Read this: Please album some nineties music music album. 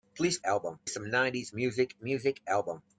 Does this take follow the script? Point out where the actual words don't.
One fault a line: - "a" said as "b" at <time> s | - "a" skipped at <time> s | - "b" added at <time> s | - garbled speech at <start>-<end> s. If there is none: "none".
none